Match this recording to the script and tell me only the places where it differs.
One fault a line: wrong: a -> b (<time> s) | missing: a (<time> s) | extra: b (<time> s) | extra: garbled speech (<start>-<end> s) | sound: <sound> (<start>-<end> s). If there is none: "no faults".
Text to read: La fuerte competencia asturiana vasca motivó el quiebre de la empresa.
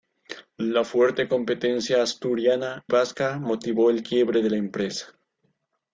no faults